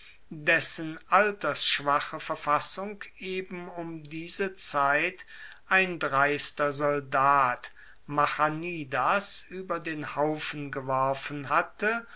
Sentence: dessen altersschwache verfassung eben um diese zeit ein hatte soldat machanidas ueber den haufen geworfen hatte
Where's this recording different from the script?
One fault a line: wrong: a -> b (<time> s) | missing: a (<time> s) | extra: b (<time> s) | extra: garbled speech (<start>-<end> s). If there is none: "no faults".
wrong: hatte -> dreister (6.0 s)